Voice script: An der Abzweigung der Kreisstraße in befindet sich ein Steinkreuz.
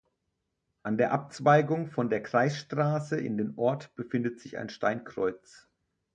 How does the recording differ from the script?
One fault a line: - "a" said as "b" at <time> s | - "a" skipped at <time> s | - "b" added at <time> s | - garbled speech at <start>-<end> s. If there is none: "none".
- "von" added at 1.9 s
- "den Ort" added at 3.4 s